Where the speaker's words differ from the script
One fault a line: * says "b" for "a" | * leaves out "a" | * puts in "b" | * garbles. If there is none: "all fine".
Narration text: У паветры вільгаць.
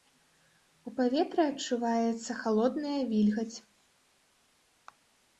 * puts in "адчуваецца халодная"